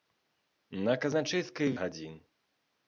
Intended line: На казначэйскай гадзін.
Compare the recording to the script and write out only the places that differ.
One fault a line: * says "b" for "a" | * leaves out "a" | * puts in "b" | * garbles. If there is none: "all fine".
all fine